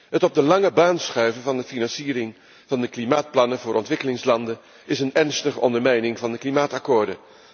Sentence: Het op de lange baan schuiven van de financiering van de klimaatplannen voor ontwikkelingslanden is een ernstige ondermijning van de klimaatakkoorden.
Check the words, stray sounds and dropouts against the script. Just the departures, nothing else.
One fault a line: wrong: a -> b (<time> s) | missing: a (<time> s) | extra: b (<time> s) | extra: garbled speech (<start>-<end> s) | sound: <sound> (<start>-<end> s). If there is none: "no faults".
no faults